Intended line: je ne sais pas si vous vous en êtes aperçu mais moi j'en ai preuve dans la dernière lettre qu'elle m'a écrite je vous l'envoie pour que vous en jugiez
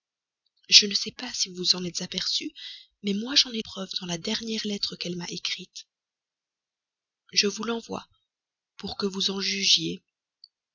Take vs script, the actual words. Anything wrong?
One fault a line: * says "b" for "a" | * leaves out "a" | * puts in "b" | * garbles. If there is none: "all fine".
all fine